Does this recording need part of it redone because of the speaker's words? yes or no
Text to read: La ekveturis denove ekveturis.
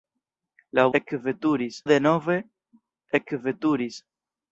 no